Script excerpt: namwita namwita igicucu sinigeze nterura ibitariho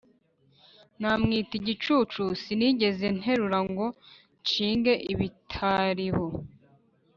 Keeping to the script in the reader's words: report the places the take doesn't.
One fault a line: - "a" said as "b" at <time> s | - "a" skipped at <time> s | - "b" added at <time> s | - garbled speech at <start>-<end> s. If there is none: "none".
- "namwita" skipped at 1.5 s
- "ngo nshinge" added at 3.7 s